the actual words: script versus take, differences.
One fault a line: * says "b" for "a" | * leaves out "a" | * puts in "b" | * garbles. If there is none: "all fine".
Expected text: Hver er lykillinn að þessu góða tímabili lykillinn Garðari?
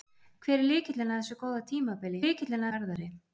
all fine